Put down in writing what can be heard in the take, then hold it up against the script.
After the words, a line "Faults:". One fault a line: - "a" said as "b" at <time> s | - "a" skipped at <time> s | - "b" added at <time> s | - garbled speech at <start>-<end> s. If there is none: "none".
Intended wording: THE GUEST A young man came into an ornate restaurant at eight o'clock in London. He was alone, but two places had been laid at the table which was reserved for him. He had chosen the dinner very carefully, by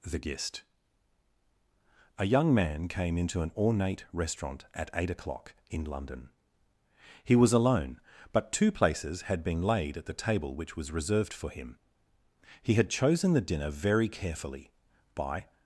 THE GUEST A young man came into an ornate restaurant at eight o'clock in London. He was alone, but two places had been laid at the table which was reserved for him. He had chosen the dinner very carefully, by
Faults:
none